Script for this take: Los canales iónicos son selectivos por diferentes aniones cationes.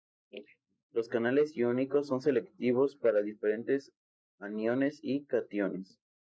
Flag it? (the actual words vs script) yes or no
yes